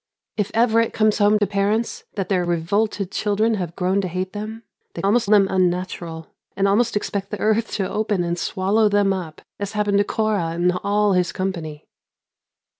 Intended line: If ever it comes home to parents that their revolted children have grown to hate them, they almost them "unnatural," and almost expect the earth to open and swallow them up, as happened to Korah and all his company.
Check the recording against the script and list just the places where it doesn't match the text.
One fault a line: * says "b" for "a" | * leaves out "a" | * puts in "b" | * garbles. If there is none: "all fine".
all fine